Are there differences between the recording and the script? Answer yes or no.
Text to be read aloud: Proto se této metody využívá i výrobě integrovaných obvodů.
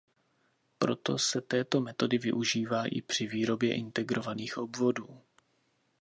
yes